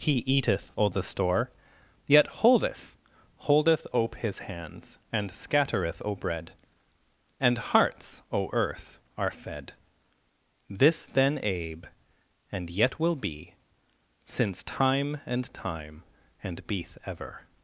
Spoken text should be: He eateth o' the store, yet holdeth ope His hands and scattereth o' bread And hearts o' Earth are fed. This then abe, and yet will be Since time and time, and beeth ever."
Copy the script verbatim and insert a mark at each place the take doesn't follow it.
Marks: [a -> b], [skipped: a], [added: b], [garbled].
He eateth o' the store, yet holdeth [added: holdeth] ope His hands and scattereth o' bread And hearts o' Earth are fed. This then abe, and yet will be Since time and time, and beeth ever."